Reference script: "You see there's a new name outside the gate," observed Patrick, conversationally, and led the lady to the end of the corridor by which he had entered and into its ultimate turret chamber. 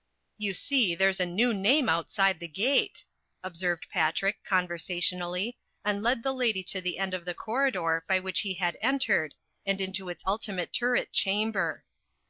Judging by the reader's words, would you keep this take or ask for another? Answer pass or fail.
pass